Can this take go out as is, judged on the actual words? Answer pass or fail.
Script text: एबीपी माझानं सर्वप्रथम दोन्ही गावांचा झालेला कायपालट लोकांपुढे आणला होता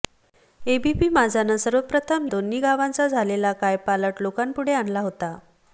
pass